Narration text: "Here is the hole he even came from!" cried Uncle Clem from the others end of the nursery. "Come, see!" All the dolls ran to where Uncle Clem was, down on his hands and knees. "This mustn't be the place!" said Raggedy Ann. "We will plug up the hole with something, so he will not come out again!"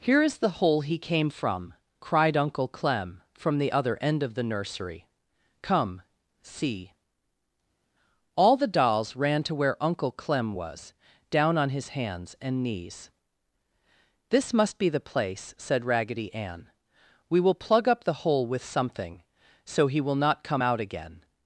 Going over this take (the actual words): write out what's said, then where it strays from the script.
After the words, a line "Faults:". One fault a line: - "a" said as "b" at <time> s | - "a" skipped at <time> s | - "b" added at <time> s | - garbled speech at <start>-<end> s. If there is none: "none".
"Here is the hole he came from!" cried Uncle Clem from the other end of the nursery. "Come, see!" All the dolls ran to where Uncle Clem was, down on his hands and knees. "This must be the place!" said Raggedy Ann. "We will plug up the hole with something, so he will not come out again!"
Faults:
- "even" skipped at 1.0 s
- "others" said as "other" at 3.7 s
- "mustn't" said as "must" at 14.5 s